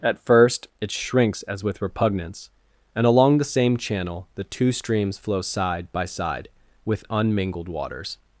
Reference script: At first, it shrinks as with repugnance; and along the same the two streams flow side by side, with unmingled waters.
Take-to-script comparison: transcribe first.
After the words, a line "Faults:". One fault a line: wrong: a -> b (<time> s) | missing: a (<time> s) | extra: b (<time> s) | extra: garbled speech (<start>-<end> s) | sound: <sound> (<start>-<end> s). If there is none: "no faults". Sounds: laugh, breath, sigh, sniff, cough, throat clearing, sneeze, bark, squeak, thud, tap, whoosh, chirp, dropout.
At first, it shrinks as with repugnance; and along the same channel the two streams flow side by side, with unmingled waters.
Faults:
extra: channel (3.8 s)